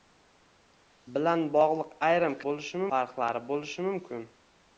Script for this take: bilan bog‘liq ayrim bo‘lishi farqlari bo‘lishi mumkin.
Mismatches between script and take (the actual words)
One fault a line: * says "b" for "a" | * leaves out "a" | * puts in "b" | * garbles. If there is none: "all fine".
all fine